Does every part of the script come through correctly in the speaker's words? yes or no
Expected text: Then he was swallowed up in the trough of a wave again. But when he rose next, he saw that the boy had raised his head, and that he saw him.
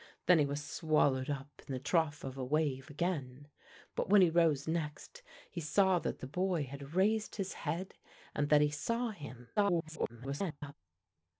no